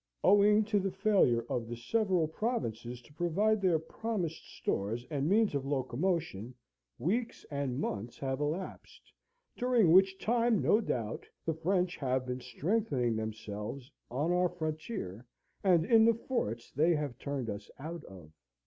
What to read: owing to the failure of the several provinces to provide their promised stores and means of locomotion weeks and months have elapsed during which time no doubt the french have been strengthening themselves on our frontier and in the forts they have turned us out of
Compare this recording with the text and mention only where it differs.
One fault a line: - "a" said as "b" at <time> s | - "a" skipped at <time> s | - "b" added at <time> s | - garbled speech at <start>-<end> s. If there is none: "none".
none